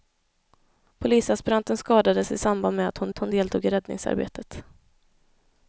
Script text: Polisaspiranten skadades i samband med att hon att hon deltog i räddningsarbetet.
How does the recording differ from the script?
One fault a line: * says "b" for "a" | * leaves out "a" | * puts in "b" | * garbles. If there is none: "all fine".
all fine